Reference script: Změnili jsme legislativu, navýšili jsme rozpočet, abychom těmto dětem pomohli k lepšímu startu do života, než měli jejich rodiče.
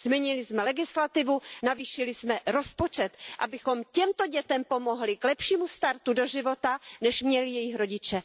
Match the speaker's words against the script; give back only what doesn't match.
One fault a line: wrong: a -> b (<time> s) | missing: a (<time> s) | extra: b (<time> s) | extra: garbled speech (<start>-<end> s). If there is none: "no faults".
no faults